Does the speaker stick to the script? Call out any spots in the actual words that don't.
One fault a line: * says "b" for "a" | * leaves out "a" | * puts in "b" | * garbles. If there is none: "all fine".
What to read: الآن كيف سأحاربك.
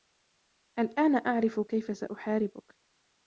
* puts in "أعرف"